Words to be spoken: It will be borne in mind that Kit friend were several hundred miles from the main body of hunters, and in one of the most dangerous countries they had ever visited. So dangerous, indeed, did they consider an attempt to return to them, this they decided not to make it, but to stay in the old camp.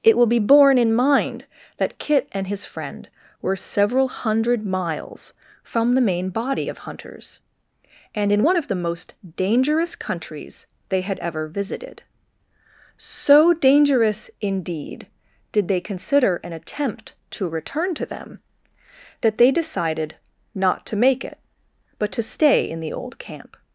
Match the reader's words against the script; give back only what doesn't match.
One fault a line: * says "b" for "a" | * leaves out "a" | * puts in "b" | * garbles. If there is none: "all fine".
* puts in "and his"
* says "that" for "this"